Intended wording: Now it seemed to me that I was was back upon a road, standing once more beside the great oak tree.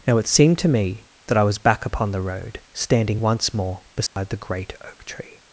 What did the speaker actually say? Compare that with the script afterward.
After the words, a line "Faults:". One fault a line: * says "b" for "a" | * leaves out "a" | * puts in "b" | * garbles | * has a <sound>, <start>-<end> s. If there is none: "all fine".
Now it seemed to me that I was back upon the road, standing once more beside the great oak tree.
Faults:
* leaves out "was"
* says "the" for "a"
* has a dropout, 4.1-4.2 s